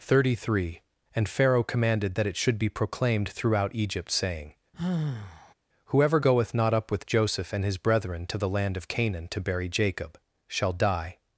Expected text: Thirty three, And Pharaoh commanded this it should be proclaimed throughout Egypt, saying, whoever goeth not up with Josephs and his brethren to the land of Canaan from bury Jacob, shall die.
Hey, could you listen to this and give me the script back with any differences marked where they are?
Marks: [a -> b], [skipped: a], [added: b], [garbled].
Thirty three, And Pharaoh commanded [this -> that] it should be proclaimed throughout Egypt, saying, whoever goeth not up with [Josephs -> Joseph] and his brethren to the land of Canaan [from -> to] bury Jacob, shall die.